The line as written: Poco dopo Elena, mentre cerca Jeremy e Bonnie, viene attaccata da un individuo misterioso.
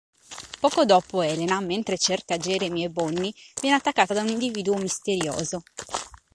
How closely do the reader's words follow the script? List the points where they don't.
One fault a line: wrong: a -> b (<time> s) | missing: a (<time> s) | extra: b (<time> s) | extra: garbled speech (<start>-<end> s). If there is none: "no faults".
no faults